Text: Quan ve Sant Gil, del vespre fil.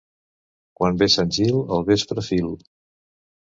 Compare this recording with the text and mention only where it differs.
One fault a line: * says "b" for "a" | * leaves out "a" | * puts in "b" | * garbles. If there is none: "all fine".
* says "al" for "del"